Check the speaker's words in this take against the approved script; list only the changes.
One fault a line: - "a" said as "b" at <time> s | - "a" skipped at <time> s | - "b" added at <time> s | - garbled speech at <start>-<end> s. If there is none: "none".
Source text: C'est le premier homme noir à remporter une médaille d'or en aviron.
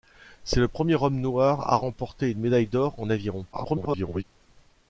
- garbled speech at 3.5-4.2 s